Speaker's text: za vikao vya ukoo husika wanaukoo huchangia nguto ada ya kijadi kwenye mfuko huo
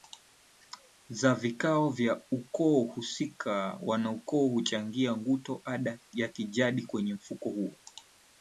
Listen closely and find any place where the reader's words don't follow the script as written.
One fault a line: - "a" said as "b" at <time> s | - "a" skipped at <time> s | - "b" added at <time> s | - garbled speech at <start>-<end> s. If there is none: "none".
none